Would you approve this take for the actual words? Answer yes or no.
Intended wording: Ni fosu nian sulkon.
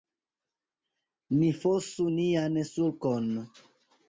yes